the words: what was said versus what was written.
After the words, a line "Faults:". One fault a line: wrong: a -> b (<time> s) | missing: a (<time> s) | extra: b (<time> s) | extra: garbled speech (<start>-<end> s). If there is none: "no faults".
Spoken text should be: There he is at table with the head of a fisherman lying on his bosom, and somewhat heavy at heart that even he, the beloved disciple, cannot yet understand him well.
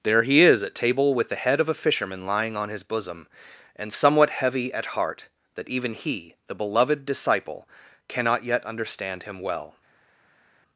There he is at table with the head of a fisherman lying on his bosom, and somewhat heavy at heart that even he, the beloved disciple, cannot yet understand him well.
Faults:
no faults